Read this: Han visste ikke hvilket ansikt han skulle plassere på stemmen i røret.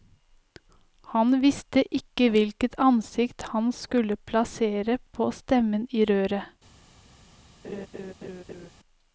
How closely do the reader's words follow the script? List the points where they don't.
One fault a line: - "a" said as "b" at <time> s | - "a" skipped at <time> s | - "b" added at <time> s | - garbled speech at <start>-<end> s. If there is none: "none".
none